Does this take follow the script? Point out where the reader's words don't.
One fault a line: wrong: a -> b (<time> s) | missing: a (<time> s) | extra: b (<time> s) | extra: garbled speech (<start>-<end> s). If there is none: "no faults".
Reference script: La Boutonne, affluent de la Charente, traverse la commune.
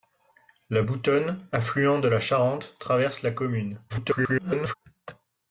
extra: garbled speech (3.9-4.7 s)